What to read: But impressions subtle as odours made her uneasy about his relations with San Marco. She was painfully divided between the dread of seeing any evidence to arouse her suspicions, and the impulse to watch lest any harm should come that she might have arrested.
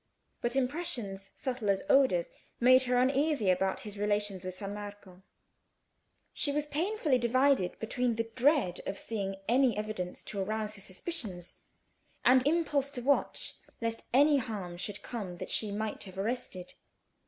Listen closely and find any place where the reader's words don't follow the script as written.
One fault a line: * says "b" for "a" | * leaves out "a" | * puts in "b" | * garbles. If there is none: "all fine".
* leaves out "the"